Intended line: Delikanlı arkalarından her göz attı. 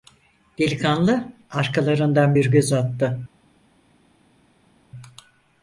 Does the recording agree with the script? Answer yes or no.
no